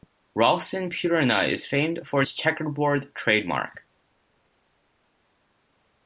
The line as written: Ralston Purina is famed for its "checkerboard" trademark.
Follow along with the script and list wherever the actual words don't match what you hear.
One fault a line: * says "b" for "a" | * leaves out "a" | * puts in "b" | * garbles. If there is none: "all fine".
all fine